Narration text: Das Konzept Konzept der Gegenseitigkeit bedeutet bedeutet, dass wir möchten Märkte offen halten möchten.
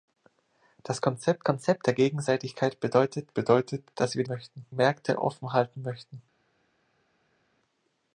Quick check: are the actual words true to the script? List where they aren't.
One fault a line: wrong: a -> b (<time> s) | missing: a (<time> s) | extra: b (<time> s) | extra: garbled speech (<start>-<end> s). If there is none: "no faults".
no faults